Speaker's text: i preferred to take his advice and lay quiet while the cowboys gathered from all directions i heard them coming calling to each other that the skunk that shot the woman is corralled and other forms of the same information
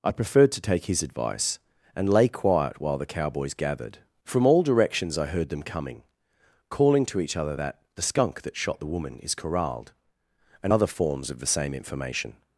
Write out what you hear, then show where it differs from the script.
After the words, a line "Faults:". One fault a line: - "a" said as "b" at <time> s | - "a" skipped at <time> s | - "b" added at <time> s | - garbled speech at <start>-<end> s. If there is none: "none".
i preferred to take his advice and lay quiet while the cowboys gathered from all directions i heard them coming calling to each other that the skunk that shot the woman is corralled and other forms of the same information
Faults:
none